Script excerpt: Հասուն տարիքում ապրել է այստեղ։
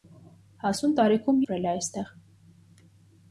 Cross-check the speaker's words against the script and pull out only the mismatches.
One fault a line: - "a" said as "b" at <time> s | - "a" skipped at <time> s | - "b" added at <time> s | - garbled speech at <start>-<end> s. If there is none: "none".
none